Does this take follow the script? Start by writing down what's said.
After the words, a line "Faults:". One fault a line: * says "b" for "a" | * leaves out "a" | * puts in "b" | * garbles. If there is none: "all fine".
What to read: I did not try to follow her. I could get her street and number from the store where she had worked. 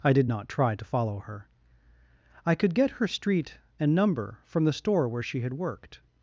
I did not try to follow her. I could get her street and number from the store where she had worked.
Faults:
all fine